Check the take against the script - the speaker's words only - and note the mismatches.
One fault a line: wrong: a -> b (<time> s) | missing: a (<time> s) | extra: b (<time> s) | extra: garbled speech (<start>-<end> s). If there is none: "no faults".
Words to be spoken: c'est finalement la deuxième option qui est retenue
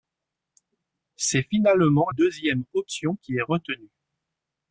missing: la (2.1 s)